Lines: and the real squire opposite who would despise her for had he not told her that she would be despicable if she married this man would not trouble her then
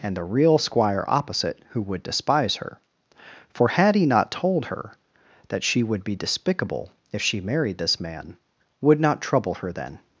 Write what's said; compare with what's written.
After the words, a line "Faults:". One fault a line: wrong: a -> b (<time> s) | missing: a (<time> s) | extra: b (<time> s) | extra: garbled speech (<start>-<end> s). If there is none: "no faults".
and the real squire opposite who would despise her for had he not told her that she would be despicable if she married this man would not trouble her then
Faults:
no faults